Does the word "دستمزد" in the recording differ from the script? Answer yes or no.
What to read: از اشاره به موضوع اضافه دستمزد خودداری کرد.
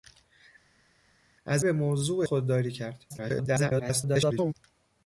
yes